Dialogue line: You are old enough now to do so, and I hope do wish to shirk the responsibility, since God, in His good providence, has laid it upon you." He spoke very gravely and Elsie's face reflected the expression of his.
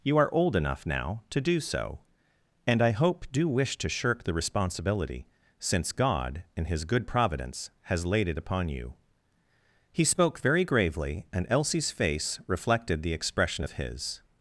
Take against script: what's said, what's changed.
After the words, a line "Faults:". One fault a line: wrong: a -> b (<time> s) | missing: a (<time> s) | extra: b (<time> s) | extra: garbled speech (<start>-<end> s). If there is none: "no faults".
You are old enough now to do so, and I hope do wish to shirk the responsibility, since God, in His good providence, has laid it upon you." He spoke very gravely and Elsie's face reflected the expression of his.
Faults:
no faults